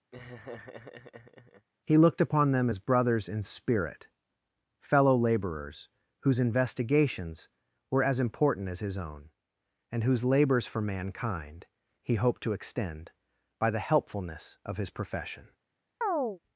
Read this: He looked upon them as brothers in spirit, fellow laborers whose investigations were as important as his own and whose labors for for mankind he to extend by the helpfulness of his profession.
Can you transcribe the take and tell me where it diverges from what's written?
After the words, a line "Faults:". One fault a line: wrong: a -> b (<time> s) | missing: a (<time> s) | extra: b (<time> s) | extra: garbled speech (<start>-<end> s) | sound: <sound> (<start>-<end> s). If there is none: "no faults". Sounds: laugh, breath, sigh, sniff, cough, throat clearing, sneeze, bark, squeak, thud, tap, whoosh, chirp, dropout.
He looked upon them as brothers in spirit, fellow laborers whose investigations were as important as his own and whose labors for mankind he hoped to extend by the helpfulness of his profession.
Faults:
sound: laugh (0.1-1.7 s)
missing: for (10.8 s)
extra: hoped (12.2 s)
sound: chirp (16.0-16.4 s)